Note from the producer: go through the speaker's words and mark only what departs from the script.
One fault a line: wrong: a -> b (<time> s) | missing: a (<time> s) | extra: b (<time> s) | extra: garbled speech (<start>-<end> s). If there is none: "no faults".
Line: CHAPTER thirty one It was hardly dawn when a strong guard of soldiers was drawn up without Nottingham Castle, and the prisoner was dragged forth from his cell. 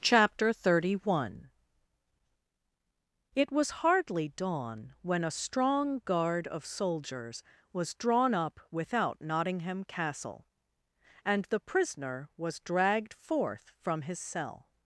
no faults